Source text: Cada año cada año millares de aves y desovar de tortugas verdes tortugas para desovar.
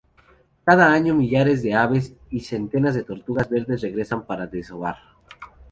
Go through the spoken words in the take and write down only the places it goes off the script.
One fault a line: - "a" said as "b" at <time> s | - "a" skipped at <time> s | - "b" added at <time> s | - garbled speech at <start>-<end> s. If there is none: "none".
- "cada año" skipped at 1.1 s
- "desovar" said as "centenas" at 2.4 s
- "tortugas" said as "regresan" at 3.8 s